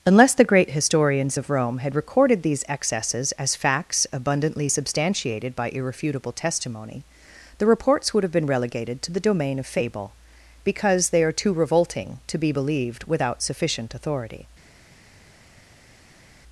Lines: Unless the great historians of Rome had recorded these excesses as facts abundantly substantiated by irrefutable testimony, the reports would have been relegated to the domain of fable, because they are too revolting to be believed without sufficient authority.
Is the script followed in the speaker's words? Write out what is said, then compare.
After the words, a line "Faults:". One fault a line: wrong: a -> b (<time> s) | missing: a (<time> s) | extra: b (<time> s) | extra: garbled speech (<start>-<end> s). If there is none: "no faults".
Unless the great historians of Rome had recorded these excesses as facts abundantly substantiated by irrefutable testimony, the reports would have been relegated to the domain of fable, because they are too revolting to be believed without sufficient authority.
Faults:
no faults